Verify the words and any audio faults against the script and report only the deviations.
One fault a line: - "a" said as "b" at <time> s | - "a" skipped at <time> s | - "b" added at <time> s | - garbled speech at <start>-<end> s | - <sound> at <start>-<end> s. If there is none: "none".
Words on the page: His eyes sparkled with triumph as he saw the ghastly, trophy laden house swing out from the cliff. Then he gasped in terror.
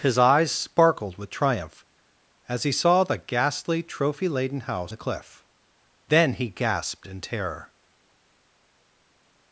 - "swing out from" skipped at 4.9 s